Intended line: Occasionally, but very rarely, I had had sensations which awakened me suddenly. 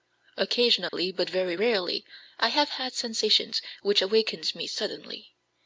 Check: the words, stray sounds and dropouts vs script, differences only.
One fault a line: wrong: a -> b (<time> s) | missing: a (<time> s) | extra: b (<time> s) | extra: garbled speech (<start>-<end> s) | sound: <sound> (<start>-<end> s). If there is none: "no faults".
sound: dropout (0.9-0.9 s)
wrong: had -> have (2.5 s)